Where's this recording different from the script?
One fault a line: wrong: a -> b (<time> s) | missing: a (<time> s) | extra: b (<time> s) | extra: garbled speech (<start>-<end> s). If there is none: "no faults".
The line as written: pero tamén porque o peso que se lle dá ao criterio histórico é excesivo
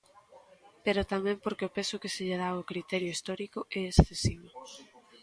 no faults